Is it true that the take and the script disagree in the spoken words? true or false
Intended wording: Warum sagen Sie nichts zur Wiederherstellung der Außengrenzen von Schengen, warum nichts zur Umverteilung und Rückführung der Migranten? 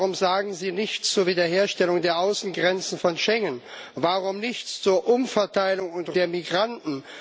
true